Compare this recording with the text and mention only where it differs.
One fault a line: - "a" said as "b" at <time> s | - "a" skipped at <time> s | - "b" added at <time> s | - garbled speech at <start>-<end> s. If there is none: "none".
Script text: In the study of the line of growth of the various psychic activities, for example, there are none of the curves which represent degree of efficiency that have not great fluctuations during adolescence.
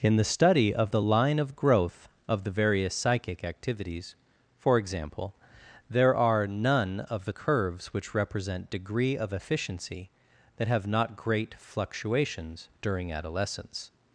none